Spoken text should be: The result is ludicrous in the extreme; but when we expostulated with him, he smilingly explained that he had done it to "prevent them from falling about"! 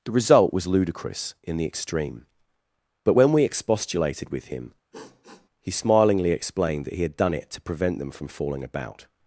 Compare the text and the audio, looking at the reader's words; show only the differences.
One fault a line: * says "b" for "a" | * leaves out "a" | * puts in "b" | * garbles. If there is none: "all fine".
* says "was" for "is"